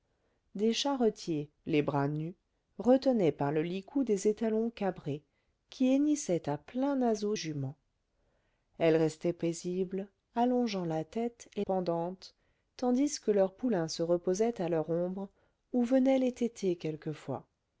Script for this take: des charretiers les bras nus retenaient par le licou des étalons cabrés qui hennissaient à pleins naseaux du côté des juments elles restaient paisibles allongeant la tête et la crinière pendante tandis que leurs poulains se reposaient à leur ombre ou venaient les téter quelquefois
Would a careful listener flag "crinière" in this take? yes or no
yes